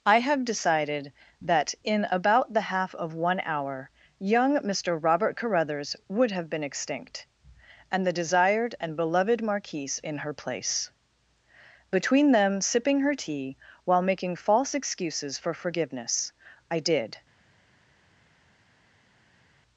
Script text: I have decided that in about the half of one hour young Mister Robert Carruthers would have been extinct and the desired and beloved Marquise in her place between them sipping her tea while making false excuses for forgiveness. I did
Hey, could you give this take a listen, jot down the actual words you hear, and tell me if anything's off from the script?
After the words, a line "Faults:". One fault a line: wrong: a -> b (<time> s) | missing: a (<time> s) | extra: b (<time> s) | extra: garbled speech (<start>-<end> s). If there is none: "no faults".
I have decided that in about the half of one hour young Mister Robert Carruthers would have been extinct and the desired and beloved Marquise in her place between them sipping her tea while making false excuses for forgiveness. I did
Faults:
no faults